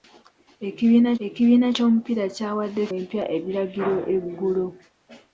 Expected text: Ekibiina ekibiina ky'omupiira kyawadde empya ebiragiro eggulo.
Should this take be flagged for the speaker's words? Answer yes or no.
no